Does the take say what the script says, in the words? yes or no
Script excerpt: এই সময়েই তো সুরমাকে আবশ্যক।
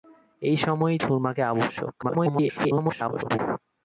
no